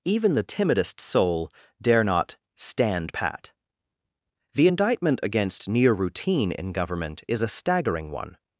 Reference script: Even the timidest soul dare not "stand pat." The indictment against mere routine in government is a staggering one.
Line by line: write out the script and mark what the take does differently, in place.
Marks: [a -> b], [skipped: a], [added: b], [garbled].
Even the timidest soul dare not "stand pat." The indictment against [mere -> near] routine in government is a staggering one.